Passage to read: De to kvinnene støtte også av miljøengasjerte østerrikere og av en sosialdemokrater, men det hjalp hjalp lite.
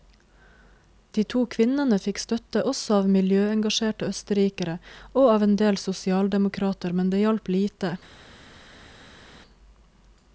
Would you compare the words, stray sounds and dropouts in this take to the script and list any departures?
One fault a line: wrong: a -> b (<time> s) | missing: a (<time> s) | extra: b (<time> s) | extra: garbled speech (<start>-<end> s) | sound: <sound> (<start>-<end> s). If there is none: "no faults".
extra: fikk (2.0 s)
extra: del (5.6 s)
missing: hjalp (7.5 s)